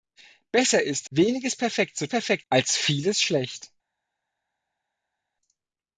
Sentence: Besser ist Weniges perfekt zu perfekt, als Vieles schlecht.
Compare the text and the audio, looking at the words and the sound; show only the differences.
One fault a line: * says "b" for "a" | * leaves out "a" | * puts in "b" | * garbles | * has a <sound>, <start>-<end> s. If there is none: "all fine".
all fine